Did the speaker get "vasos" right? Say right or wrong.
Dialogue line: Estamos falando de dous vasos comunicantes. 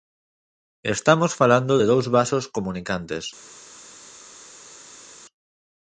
right